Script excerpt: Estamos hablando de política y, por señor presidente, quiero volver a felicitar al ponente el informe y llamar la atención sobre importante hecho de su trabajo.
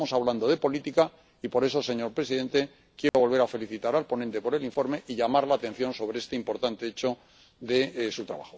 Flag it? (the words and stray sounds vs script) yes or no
yes